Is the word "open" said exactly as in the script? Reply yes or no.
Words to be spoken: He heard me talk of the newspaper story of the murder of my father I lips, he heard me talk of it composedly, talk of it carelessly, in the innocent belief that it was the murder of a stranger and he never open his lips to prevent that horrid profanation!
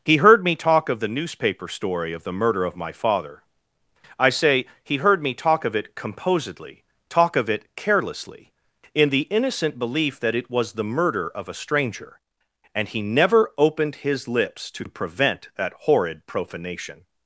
no